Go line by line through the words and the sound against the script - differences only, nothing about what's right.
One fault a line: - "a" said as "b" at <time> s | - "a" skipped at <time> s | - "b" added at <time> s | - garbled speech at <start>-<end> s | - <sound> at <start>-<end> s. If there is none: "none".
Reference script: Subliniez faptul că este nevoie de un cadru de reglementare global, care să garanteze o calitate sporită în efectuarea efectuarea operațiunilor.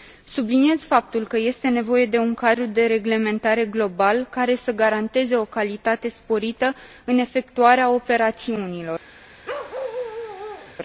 - "efectuarea" skipped at 7.9 s
- bark at 9.4-10.8 s